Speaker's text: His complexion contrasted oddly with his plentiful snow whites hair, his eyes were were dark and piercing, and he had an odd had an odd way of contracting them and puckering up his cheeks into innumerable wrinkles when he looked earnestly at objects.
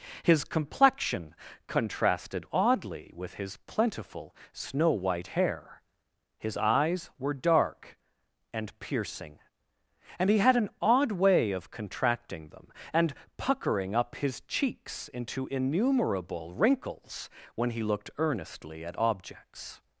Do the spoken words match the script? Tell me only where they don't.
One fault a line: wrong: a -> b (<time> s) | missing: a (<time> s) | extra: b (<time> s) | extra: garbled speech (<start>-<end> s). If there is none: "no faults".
wrong: whites -> white (4.9 s)
missing: were (7.3 s)
missing: had an odd (11.1 s)